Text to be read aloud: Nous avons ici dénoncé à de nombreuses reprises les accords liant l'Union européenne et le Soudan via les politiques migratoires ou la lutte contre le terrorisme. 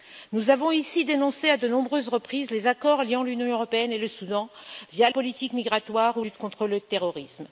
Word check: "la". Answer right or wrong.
wrong